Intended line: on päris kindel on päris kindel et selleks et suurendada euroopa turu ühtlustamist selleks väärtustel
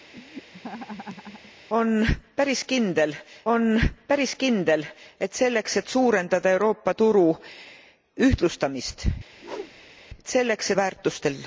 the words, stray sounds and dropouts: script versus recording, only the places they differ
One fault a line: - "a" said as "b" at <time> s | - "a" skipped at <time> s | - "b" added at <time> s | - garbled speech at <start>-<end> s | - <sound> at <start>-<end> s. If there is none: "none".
- laugh at 0.1-1.5 s
- whoosh at 9.3-10.0 s